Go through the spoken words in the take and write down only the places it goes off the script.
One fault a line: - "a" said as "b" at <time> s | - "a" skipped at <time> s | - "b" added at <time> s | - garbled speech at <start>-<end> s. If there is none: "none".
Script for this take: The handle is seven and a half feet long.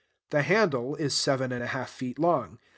none